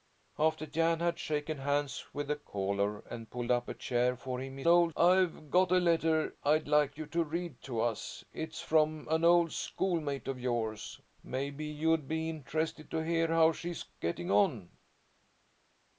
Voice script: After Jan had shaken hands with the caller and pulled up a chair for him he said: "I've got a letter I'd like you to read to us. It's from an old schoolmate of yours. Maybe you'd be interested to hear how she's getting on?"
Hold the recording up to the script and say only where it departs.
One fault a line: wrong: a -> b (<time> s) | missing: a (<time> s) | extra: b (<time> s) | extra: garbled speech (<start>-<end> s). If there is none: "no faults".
wrong: said -> old (4.7 s)